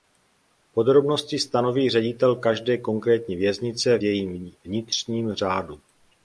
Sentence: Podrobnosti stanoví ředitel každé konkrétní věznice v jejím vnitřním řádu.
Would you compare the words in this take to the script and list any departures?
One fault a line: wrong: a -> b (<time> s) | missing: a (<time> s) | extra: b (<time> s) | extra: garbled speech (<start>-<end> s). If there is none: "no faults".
missing: v (4.0 s)